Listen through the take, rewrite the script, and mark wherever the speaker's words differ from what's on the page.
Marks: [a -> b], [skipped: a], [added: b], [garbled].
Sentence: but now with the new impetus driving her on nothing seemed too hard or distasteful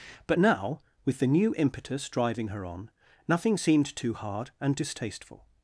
but now with the new impetus driving her on nothing seemed too hard [or -> and] distasteful